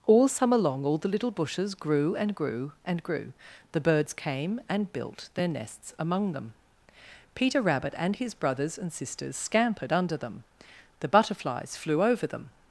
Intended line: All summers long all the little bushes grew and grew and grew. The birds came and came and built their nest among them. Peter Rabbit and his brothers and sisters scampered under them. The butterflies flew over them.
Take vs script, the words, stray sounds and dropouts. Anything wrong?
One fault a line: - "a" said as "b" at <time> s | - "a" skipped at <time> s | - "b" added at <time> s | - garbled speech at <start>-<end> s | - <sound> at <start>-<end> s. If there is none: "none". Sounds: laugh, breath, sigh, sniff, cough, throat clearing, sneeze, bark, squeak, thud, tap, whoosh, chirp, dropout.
- "summers" said as "summer" at 0.3 s
- "came and" skipped at 4.9 s
- "nest" said as "nests" at 5.5 s